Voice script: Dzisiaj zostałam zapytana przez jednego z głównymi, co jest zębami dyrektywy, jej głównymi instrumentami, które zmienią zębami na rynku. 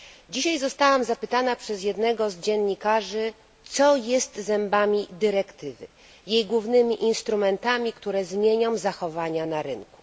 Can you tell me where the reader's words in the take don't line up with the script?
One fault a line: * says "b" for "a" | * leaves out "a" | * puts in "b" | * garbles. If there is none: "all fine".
* says "dziennikarzy" for "głównymi"
* says "zachowania" for "zębami"